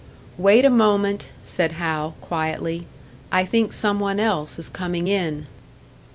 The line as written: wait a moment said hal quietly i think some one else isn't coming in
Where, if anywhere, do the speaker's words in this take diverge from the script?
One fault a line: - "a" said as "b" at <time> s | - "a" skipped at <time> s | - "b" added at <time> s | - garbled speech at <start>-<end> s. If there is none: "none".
- "isn't" said as "is" at 4.6 s